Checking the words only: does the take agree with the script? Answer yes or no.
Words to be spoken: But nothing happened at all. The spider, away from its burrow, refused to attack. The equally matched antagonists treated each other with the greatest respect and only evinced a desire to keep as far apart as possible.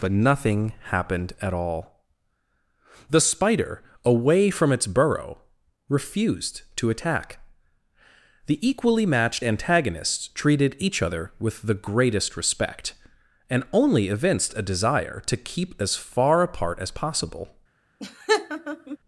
yes